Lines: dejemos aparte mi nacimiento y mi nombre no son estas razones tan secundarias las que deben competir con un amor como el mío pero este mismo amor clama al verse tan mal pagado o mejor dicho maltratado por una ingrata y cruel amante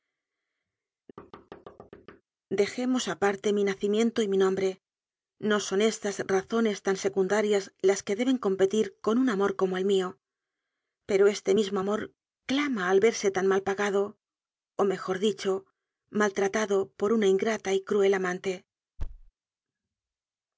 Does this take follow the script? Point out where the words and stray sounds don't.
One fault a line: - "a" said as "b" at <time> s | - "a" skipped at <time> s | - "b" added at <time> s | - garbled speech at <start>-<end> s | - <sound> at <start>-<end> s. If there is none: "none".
- thud at 1.2-2.2 s
- thud at 19.0-19.3 s